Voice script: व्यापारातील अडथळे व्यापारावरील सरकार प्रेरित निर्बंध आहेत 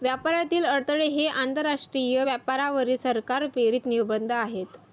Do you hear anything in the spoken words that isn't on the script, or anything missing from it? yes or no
yes